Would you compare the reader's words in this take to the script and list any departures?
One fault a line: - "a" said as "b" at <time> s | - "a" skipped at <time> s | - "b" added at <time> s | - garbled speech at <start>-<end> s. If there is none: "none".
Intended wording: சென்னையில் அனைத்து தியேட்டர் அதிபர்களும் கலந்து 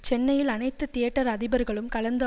none